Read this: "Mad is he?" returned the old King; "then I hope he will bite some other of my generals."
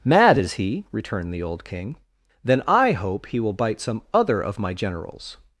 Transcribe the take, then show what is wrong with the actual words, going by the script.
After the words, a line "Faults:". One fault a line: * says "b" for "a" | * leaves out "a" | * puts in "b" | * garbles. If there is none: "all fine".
"Mad is he?" returned the old King; "then I hope he will bite some other of my generals."
Faults:
all fine